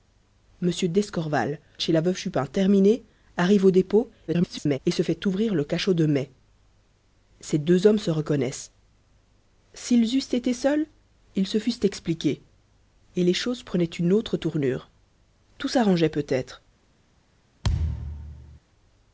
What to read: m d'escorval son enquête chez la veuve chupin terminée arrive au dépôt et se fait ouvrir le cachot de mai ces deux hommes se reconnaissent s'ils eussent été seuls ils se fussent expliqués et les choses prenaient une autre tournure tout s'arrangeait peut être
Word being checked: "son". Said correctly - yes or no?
no